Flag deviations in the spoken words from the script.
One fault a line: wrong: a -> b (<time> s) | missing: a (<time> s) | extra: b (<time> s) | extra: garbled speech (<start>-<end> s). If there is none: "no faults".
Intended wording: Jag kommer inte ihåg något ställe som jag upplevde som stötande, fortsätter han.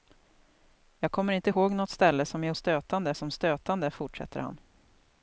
wrong: upplevde -> stötande (2.5 s)